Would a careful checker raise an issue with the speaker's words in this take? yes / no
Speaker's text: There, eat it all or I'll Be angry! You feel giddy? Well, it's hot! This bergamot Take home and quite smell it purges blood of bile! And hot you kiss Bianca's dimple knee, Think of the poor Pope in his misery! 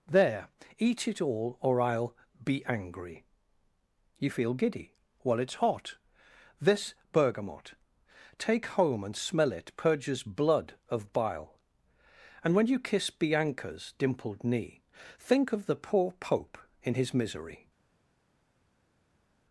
yes